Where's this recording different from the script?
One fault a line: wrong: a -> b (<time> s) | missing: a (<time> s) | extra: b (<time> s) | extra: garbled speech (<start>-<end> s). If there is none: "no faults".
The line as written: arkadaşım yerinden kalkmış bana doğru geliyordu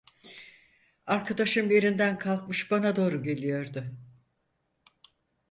no faults